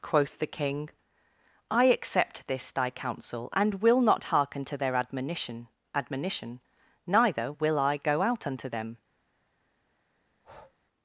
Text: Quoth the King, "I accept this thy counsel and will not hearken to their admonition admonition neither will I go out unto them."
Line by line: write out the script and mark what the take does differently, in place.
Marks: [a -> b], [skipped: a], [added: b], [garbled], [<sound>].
Quoth the King, "I accept this thy counsel and will not hearken to their admonition admonition neither will I go out unto them." [breath]